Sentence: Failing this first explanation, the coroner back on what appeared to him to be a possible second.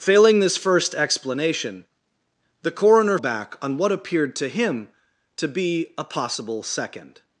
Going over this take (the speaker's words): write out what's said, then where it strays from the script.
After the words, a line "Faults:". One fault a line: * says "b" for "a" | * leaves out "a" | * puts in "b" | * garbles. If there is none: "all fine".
Failing this first explanation, the coroner back on what appeared to him to be a possible second.
Faults:
all fine